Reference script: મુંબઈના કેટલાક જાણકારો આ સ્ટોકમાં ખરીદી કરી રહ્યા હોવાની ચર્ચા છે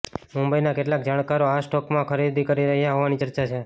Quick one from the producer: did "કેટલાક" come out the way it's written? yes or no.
yes